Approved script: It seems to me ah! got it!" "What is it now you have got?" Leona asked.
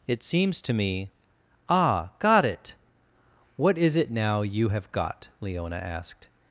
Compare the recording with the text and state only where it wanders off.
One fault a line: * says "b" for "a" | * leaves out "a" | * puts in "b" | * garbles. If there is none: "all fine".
all fine